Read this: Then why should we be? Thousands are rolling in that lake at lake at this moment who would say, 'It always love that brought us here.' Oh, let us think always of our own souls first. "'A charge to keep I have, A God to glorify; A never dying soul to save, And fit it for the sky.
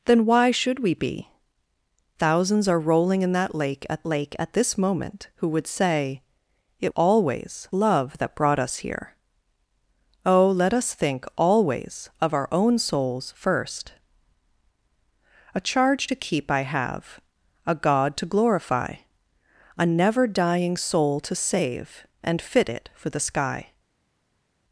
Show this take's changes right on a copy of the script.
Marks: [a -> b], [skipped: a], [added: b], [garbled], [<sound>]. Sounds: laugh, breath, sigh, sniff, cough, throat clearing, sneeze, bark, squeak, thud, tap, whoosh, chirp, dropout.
Then why should we be? Thousands are rolling in that lake at lake at this moment who would say, 'It always love that brought us here.' Oh, let us think always of our own souls first. "'A charge to keep I have, A God to glorify; A never dying soul to save, And fit it for the sky.